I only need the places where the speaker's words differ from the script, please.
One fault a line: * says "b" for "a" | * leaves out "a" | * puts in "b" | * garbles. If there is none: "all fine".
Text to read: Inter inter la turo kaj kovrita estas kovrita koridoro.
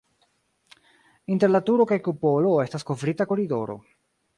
* leaves out "inter"
* says "kupolo" for "kovrita"